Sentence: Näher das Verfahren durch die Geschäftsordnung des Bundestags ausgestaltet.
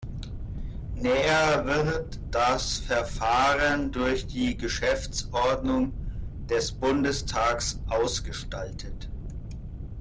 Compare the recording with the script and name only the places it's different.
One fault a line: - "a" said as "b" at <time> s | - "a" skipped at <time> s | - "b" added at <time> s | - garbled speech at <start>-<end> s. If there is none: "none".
- "wird" added at 1.6 s